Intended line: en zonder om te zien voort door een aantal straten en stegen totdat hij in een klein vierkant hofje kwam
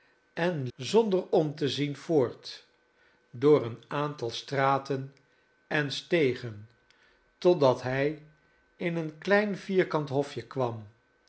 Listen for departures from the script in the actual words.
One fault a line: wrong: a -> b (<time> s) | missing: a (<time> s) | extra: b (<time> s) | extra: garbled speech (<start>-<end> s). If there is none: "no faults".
no faults